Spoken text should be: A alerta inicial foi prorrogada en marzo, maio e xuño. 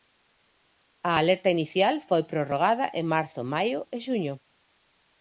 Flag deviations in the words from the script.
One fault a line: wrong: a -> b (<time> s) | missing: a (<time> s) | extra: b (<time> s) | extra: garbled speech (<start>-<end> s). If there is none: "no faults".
no faults